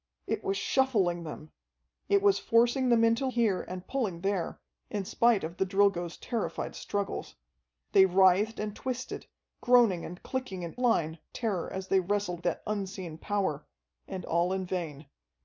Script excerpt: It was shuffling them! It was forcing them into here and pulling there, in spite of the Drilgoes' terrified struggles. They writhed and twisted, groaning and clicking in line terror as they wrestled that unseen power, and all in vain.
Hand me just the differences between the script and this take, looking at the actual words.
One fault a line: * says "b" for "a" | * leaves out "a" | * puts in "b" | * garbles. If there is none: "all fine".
all fine